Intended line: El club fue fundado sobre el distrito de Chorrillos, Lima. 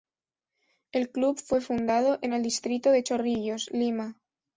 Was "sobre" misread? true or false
true